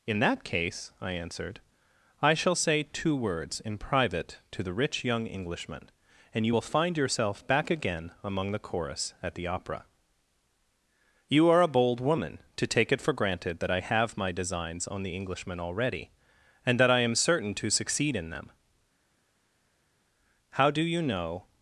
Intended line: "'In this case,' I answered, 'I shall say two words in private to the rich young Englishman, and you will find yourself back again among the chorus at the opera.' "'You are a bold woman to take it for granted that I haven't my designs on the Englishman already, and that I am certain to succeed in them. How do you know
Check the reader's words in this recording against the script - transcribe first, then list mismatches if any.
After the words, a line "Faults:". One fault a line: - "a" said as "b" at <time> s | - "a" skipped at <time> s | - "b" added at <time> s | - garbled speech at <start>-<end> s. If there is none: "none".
"'In that case,' I answered, 'I shall say two words in private to the rich young Englishman, and you will find yourself back again among the chorus at the opera.' "'You are a bold woman to take it for granted that I have my designs on the Englishman already, and that I am certain to succeed in them. How do you know
Faults:
- "this" said as "that" at 0.2 s
- "haven't" said as "have" at 13.8 s